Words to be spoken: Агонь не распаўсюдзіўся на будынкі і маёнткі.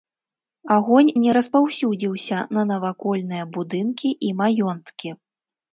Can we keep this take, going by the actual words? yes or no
no